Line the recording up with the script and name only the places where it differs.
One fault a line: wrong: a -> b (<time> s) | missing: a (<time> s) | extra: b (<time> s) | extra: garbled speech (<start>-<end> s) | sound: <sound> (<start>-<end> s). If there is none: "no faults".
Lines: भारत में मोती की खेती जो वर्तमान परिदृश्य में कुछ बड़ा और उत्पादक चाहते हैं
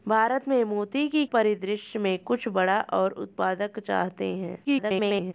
missing: खेती जो वर्तमान (1.2 s)
extra: garbled speech (4.6-5.3 s)